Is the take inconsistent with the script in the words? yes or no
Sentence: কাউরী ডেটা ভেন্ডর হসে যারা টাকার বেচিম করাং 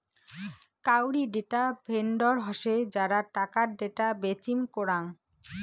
yes